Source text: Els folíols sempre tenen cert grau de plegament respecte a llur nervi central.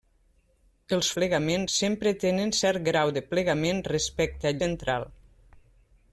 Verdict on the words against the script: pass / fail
fail